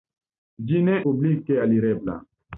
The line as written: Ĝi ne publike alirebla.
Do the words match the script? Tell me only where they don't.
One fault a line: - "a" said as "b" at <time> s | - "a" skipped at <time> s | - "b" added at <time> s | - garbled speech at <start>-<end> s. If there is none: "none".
none